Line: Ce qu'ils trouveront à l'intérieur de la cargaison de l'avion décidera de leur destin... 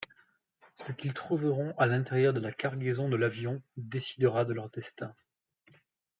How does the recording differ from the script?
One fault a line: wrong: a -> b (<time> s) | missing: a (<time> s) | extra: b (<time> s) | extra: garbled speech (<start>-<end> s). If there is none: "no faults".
no faults